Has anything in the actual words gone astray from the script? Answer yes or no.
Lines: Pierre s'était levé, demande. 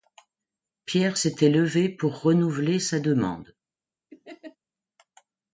yes